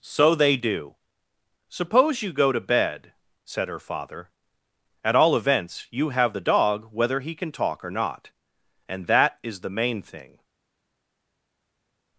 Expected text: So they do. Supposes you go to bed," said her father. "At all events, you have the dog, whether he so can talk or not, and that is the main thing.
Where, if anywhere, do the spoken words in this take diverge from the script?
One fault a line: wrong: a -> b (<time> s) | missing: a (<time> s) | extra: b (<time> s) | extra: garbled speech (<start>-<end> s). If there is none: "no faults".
wrong: Supposes -> Suppose (1.7 s)
missing: so (7.3 s)